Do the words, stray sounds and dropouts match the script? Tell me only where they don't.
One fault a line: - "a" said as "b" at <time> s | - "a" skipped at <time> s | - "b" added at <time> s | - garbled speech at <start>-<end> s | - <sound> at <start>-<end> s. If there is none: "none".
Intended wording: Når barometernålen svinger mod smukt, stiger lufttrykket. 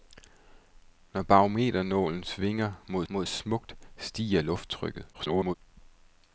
- "mod" added at 3.1 s
- garbled speech at 5.1-5.5 s